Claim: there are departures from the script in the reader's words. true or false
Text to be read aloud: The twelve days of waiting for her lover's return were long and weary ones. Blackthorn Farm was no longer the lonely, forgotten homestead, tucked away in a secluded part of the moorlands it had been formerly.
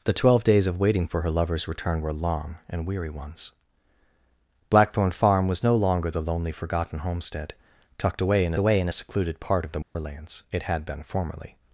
true